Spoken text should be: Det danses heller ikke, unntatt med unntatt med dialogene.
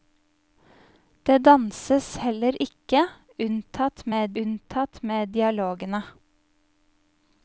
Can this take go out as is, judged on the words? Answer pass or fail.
pass